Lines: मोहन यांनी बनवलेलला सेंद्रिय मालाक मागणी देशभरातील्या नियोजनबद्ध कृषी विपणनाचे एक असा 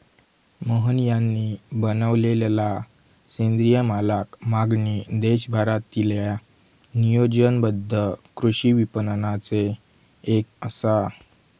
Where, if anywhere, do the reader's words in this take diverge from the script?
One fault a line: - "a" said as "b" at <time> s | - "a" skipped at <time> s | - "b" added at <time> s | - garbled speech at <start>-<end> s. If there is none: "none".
none